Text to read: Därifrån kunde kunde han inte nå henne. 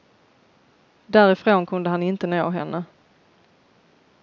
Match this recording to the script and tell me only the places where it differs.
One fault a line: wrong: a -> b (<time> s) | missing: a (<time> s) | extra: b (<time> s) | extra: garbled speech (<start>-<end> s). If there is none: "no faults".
missing: kunde (1.9 s)